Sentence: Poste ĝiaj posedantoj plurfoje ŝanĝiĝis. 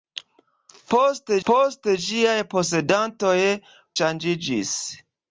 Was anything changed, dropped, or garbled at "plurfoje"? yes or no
yes